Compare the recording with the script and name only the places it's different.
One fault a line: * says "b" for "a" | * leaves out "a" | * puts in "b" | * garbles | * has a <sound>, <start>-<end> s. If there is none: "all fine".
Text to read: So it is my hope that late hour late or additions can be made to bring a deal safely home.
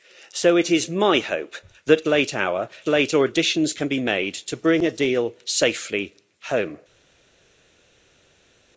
all fine